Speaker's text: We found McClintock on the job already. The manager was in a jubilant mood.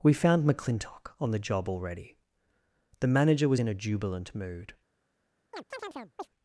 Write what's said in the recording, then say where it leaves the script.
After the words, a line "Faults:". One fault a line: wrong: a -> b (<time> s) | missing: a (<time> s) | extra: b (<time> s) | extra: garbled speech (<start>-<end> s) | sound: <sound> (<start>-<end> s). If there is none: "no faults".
We found McClintock on the job already. The manager was in a jubilant mood.
Faults:
sound: chirp (5.5-6.3 s)